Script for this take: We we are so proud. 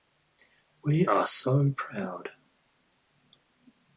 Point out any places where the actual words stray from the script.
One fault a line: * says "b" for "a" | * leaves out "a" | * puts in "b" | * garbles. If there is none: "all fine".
* leaves out "we"